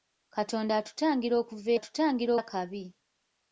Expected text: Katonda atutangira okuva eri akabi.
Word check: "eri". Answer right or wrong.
wrong